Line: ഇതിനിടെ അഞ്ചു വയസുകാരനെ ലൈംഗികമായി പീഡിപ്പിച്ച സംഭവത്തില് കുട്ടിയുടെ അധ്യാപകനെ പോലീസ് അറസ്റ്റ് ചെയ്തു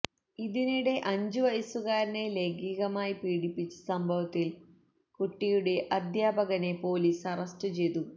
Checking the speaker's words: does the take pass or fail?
pass